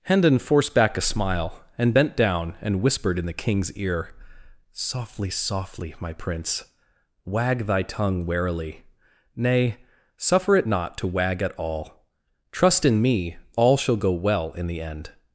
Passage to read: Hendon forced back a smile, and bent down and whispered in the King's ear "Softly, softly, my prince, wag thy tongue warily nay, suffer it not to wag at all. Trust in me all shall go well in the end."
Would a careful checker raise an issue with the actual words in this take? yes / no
no